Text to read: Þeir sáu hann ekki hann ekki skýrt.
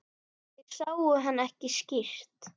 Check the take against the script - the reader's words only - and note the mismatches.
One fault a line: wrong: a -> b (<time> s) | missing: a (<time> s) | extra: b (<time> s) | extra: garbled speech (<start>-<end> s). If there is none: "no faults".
missing: hann ekki (1.7 s)